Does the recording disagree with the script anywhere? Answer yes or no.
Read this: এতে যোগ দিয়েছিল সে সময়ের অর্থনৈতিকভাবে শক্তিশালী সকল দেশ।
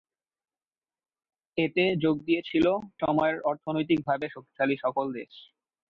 yes